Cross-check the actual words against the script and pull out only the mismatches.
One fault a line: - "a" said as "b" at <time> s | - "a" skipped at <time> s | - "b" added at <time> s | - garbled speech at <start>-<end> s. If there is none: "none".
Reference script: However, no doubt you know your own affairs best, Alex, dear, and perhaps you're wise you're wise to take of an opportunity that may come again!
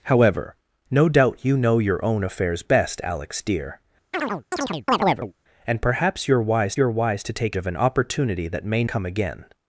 none